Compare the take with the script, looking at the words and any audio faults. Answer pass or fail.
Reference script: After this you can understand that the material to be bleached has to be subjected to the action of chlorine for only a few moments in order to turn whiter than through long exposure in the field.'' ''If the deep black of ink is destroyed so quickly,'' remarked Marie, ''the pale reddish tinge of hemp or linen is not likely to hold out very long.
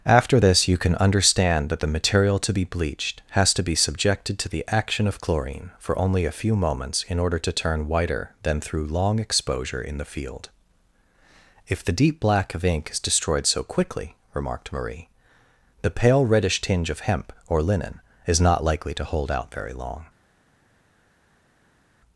pass